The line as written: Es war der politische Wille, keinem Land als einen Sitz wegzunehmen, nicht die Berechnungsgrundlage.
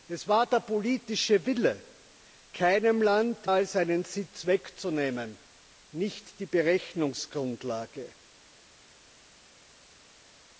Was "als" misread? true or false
false